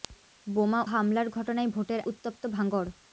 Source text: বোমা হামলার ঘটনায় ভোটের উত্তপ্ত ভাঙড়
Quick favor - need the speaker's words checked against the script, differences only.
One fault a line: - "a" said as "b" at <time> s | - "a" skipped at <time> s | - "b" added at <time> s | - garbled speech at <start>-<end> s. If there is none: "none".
none